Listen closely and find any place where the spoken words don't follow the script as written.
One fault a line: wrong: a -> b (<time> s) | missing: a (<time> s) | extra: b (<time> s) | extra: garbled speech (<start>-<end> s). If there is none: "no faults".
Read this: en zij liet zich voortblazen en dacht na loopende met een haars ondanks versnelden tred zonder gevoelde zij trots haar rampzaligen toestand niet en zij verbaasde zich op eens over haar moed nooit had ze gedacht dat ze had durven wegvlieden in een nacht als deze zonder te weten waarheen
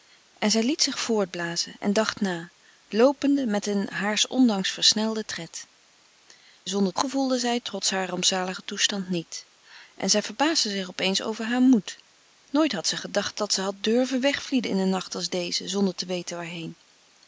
no faults